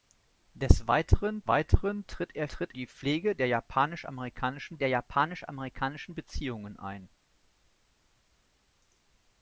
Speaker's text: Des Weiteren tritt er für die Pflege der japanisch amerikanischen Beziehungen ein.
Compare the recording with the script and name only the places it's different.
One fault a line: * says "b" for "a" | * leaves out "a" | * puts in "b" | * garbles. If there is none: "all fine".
* puts in "Weiteren"
* says "tritt" for "für"
* puts in "der japanisch amerikanischen"